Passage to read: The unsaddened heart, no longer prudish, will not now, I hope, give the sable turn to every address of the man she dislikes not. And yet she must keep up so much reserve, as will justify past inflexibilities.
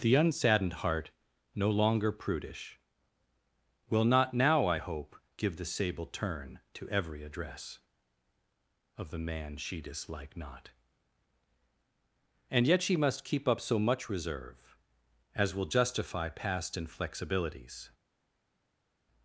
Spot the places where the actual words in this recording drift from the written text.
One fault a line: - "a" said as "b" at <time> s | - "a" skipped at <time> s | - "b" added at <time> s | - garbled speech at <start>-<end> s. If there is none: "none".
- "dislikes" said as "dislike" at 9.8 s